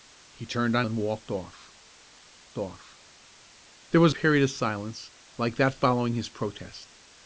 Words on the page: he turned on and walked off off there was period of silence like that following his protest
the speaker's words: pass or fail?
pass